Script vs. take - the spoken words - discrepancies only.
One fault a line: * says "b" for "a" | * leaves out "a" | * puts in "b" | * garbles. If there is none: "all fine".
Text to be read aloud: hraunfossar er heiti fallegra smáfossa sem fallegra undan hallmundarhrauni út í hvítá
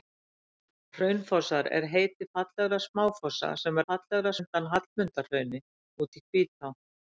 all fine